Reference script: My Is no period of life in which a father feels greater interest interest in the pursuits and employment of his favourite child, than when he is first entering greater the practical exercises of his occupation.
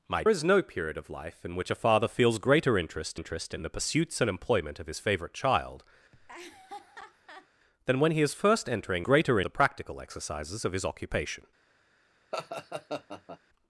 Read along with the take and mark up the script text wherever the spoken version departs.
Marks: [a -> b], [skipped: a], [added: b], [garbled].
My Is no period of life in which a father feels greater interest interest in the pursuits and employment of his favourite child, than when he is first entering greater the practical exercises of his occupation.